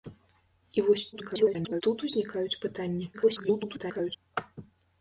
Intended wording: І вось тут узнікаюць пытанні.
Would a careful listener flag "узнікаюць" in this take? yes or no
no